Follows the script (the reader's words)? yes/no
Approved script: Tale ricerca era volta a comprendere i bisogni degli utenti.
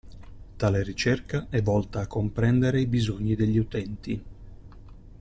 no